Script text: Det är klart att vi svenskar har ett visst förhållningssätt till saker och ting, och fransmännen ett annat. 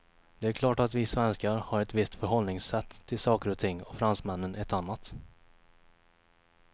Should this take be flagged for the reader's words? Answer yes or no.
no